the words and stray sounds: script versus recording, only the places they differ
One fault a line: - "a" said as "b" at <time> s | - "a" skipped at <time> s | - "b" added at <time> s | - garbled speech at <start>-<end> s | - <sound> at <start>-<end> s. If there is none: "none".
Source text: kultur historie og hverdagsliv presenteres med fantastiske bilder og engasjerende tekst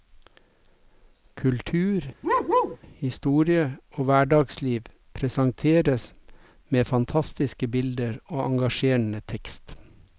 - bark at 2.2-2.8 s